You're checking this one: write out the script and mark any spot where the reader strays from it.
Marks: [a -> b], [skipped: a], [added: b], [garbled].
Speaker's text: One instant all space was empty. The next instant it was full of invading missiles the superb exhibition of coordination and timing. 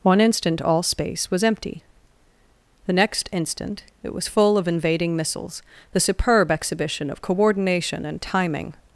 One instant all space was empty. The next instant it was full of invading missiles the superb exhibition of coordination and timing.